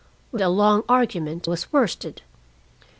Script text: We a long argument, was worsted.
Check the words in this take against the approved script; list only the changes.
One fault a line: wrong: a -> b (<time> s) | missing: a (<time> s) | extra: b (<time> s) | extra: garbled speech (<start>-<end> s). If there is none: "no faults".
no faults